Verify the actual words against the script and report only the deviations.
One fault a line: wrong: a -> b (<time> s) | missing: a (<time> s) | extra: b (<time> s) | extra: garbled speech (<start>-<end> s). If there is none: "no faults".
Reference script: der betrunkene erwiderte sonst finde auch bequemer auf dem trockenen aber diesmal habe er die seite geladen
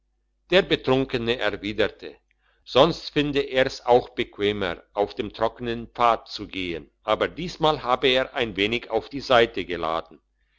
extra: er's (3.4 s)
extra: pfad zu gehen (5.9 s)
extra: ein wenig auf (8.3 s)